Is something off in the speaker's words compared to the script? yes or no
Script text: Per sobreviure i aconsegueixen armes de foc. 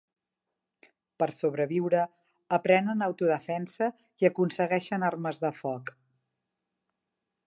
yes